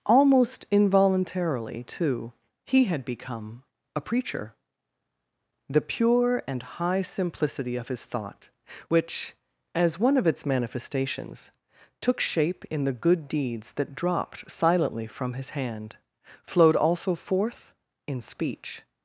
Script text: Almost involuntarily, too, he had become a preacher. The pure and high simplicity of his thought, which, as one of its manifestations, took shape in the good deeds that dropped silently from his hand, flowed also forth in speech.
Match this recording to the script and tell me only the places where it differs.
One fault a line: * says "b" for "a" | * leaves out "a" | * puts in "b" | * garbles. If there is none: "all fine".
all fine